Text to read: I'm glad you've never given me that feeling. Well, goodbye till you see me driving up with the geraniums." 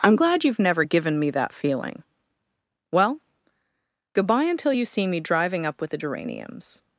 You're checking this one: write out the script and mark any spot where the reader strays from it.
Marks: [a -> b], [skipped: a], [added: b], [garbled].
I'm glad you've never given me that feeling. Well, goodbye [till -> until] you see me driving up with the geraniums."